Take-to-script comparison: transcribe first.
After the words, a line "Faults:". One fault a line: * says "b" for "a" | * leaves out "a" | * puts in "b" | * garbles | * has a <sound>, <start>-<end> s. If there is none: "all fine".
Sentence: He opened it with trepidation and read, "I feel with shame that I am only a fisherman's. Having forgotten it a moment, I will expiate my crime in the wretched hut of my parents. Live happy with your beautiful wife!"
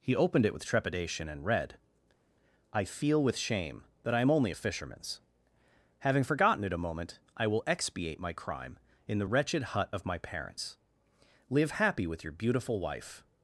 He opened it with trepidation and read, "I feel with shame that I am only a fisherman's. Having forgotten it a moment, I will expiate my crime in the wretched hut of my parents. Live happy with your beautiful wife!"
Faults:
all fine